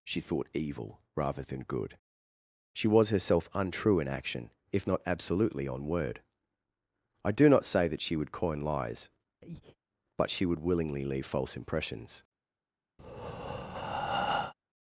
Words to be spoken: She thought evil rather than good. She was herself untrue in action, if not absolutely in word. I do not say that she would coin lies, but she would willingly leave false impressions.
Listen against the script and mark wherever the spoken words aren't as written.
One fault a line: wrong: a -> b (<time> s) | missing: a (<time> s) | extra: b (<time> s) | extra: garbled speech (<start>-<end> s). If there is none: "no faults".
wrong: in -> on (5.7 s)